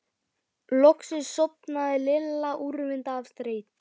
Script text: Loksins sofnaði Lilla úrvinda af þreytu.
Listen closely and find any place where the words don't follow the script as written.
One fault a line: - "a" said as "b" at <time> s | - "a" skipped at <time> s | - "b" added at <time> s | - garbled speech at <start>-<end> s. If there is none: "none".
none